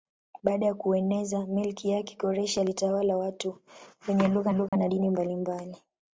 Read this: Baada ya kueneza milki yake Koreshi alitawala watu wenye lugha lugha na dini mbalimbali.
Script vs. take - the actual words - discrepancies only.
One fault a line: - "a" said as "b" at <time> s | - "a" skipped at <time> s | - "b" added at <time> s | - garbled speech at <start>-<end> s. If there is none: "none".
none